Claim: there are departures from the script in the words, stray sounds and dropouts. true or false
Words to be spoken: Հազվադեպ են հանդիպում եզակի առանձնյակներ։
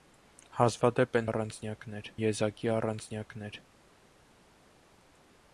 true